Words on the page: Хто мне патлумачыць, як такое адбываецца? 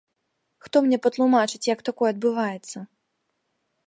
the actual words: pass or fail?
pass